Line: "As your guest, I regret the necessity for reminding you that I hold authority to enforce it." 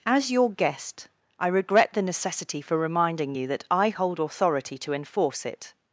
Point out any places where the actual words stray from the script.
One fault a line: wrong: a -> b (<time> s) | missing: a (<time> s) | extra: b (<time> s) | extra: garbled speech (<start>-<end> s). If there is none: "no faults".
no faults